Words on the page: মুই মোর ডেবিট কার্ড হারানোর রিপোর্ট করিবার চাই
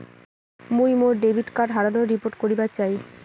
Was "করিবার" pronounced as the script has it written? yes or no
yes